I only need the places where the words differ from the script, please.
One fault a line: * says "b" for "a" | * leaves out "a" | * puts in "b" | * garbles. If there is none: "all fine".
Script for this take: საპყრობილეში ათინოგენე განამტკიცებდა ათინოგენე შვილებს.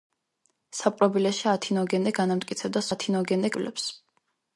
all fine